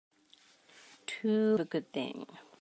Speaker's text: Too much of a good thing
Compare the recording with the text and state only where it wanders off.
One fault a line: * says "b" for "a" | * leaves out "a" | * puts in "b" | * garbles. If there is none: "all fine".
* leaves out "much of"